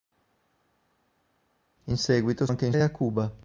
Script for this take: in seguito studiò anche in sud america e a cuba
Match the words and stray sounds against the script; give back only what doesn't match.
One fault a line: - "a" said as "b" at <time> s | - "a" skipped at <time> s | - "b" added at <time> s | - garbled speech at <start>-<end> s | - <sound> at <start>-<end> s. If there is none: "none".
- "studiò" skipped at 2.5 s
- "sud america" skipped at 2.7 s